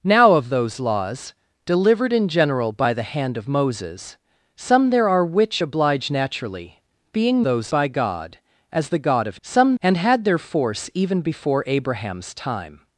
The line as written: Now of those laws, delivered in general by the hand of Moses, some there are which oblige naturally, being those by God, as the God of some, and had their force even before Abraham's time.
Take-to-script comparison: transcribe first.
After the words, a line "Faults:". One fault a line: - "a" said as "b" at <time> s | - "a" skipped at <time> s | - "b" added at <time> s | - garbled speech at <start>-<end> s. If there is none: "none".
Now of those laws, delivered in general by the hand of Moses, some there are which oblige naturally, being those by God, as the God of some, and had their force even before Abraham's time.
Faults:
none